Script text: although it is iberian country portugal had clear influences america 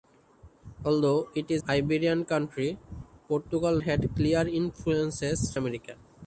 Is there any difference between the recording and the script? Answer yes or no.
no